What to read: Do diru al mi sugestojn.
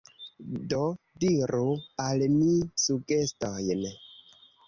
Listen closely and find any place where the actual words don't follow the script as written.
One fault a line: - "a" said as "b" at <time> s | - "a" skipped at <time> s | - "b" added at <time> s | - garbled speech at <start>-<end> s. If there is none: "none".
none